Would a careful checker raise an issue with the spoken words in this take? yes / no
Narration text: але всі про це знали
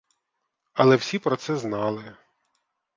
no